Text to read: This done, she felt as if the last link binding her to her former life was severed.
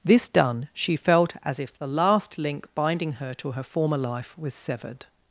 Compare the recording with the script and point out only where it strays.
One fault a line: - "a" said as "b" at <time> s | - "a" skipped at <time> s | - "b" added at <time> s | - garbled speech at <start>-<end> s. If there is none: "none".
none